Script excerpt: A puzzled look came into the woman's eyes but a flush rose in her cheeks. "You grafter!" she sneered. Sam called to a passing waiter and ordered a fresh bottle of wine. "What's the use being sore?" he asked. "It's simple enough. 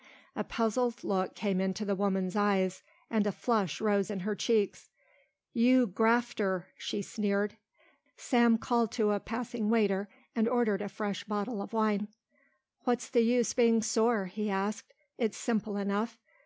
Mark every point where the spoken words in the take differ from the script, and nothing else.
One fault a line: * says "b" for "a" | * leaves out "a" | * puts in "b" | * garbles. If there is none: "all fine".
* says "and" for "but"